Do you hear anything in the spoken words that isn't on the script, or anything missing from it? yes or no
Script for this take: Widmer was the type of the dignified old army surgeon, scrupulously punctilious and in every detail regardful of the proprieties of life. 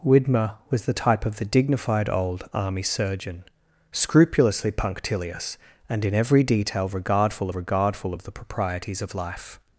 yes